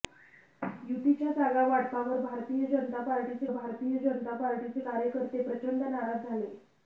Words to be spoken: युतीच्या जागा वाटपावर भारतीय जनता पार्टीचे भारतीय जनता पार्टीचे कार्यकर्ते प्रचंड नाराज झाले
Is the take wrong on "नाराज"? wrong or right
right